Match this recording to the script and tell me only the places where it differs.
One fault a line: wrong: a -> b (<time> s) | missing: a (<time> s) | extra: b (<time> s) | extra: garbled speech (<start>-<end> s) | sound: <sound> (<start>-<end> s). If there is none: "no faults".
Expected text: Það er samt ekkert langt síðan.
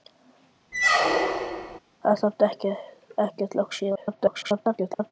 sound: squeak (0.7-1.8 s)
extra: garbled speech (4.0-5.1 s)